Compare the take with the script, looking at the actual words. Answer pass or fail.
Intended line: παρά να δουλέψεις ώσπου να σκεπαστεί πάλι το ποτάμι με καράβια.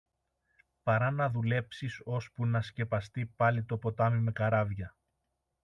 pass